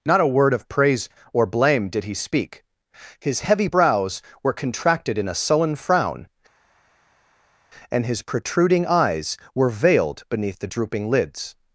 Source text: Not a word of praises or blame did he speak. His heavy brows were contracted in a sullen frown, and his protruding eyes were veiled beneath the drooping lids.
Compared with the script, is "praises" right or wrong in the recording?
wrong